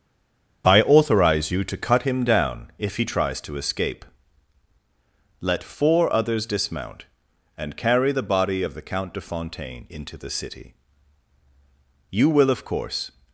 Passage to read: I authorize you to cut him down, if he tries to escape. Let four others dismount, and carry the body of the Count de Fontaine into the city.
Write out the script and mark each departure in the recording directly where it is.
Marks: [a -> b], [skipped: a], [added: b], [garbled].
I authorize you to cut him down, if he tries to escape. Let four others dismount, and carry the body of the Count de Fontaine into the city. [added: You will of course]